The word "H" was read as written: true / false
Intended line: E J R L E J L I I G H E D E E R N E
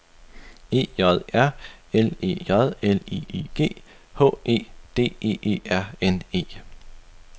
true